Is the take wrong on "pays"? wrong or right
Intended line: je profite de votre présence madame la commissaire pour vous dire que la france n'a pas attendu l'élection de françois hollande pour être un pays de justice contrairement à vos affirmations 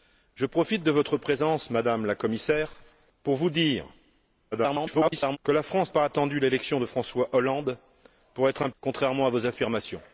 wrong